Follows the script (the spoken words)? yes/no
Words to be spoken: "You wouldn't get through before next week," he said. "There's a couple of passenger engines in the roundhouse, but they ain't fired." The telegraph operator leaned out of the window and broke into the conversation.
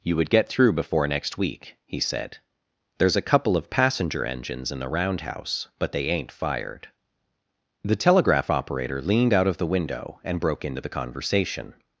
no